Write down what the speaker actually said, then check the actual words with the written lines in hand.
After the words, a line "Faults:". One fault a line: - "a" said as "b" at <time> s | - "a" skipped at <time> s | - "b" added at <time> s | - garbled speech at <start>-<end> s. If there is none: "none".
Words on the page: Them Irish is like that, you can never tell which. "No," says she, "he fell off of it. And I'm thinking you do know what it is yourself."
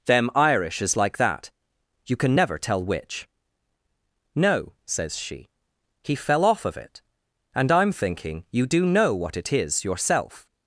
Them Irish is like that, you can never tell which. "No," says she, "he fell off of it. And I'm thinking you do know what it is yourself."
Faults:
none